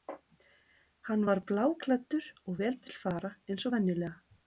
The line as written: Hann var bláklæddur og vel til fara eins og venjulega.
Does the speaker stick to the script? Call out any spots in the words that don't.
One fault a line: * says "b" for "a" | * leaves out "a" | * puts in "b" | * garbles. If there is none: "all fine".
all fine